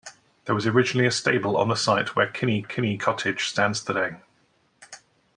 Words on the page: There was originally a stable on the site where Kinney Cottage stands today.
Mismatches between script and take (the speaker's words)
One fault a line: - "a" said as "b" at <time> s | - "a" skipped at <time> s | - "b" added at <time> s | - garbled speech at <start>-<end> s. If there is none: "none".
- "Kinney" added at 2.6 s